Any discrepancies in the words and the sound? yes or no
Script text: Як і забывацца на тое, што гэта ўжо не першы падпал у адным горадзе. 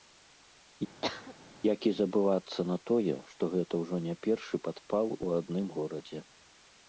yes